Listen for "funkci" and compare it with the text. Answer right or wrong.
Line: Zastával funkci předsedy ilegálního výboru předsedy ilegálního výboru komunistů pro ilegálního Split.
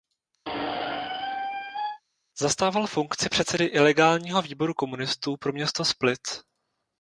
right